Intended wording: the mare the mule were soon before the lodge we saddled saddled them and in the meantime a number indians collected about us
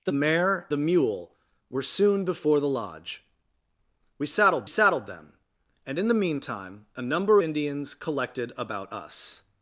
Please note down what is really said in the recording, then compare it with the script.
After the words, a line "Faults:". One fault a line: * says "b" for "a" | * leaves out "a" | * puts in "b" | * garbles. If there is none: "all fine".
the mare the mule were soon before the lodge we saddled saddled them and in the meantime a number indians collected about us
Faults:
all fine